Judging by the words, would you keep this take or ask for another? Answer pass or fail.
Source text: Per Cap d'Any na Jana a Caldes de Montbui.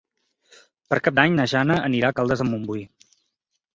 fail